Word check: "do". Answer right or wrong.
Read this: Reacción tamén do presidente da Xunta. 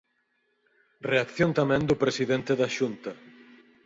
right